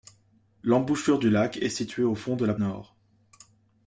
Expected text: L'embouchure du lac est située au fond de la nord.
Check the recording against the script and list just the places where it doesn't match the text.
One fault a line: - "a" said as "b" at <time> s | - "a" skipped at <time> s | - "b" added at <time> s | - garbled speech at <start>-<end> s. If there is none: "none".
none